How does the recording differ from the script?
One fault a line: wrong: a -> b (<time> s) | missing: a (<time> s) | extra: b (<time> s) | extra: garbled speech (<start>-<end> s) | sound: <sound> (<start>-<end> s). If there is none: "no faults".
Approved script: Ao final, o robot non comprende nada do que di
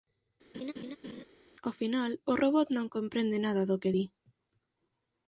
sound: laugh (0.5-1.2 s)